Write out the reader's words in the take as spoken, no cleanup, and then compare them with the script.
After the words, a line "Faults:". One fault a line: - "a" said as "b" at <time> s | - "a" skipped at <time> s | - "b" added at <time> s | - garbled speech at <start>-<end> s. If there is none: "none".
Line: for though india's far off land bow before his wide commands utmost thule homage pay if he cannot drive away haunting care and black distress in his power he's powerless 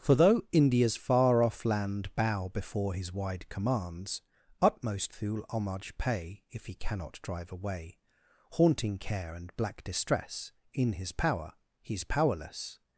for though india's far off land bow before his wide commands utmost thule homage pay if he cannot drive away haunting care and black distress in his power he's powerless
Faults:
none